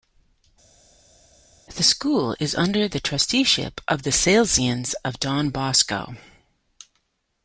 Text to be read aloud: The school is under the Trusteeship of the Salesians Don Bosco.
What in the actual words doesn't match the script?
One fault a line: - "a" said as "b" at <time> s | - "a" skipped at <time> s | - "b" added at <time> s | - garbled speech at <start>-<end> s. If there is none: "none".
- "of" added at 5.0 s